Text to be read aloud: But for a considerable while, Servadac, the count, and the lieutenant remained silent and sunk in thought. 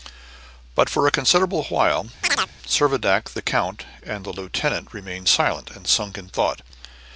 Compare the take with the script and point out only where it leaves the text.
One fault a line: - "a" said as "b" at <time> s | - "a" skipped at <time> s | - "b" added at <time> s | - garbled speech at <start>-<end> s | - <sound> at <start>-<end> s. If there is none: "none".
- chirp at 2.2-2.5 s